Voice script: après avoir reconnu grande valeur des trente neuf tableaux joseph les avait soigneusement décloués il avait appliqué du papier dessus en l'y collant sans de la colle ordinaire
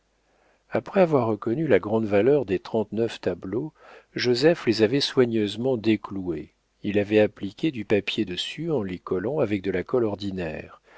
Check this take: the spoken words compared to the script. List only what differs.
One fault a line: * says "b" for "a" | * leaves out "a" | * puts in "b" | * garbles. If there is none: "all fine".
* puts in "la"
* says "avec" for "sans"